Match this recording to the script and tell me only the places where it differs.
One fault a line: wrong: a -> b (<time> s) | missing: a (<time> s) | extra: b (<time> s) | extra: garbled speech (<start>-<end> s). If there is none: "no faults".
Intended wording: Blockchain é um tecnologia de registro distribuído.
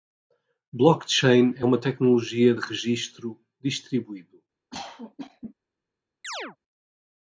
wrong: um -> uma (1.6 s)